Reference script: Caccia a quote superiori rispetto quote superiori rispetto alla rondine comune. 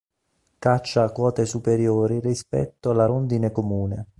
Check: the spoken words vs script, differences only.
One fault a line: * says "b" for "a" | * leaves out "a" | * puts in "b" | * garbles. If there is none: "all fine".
* leaves out "quote superiori rispetto"